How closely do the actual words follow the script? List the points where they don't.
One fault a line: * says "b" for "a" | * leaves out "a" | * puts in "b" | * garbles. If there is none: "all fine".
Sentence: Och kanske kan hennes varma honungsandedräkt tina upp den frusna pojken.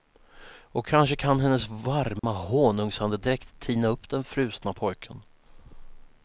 all fine